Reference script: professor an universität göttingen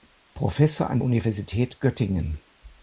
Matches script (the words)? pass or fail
pass